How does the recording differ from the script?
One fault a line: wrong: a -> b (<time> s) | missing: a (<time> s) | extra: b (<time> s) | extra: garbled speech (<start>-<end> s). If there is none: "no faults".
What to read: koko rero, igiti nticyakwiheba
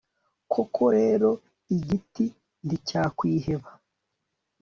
no faults